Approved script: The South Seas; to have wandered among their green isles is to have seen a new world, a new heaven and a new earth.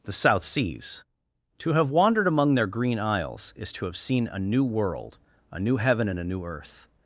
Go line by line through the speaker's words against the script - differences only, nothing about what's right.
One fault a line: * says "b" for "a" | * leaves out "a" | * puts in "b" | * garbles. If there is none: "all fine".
all fine